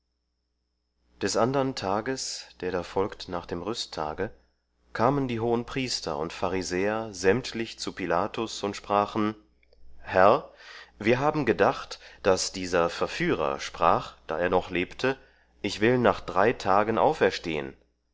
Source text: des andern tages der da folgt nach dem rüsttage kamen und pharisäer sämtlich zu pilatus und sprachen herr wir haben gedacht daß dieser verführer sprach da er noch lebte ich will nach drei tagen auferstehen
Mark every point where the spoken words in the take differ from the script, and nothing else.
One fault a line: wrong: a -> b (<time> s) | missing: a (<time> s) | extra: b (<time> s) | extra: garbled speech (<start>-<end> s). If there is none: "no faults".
extra: die hohenpriester (5.3 s)